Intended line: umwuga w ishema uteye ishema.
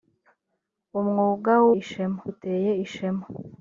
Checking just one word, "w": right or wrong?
right